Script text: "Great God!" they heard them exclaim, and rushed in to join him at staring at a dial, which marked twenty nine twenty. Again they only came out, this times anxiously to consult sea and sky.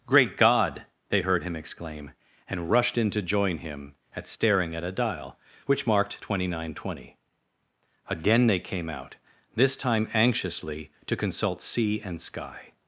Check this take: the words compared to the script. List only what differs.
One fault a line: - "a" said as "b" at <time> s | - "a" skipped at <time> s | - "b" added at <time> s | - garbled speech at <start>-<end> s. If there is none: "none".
- "them" said as "him" at 1.4 s
- "only" skipped at 8.6 s
- "times" said as "time" at 9.8 s